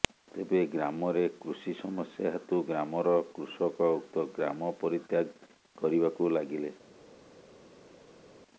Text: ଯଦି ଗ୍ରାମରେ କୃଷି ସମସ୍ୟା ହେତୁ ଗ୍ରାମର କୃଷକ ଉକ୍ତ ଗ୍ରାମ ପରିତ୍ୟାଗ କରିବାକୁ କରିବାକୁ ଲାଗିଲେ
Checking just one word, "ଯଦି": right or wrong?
wrong